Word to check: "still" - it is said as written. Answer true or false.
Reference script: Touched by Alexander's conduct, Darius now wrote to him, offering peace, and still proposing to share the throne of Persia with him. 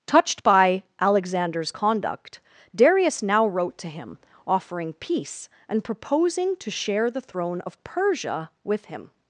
false